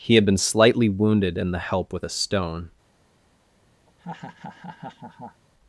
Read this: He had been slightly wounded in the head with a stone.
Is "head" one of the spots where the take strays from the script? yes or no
yes